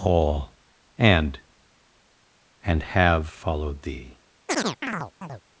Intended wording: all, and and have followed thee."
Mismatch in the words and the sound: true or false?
true